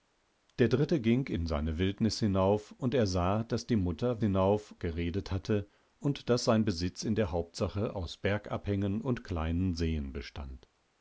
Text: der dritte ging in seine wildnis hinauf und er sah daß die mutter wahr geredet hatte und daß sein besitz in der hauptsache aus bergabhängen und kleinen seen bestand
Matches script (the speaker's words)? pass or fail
fail